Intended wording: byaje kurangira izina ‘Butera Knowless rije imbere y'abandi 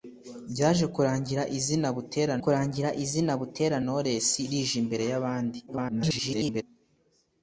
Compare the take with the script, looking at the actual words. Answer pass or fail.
fail